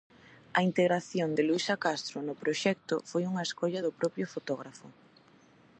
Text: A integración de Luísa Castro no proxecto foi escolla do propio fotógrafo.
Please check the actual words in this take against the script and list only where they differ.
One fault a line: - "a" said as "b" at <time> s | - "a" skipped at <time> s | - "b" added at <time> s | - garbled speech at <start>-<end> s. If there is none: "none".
- "unha" added at 3.3 s